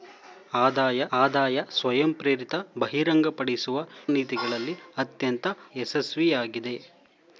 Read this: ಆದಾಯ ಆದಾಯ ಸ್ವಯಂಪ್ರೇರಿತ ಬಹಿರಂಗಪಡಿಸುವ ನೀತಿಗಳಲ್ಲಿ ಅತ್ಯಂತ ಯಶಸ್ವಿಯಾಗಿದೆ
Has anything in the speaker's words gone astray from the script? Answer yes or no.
no